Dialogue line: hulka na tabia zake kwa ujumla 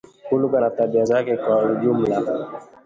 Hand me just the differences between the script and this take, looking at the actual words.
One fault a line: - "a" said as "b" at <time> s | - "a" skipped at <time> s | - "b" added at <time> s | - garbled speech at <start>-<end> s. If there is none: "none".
none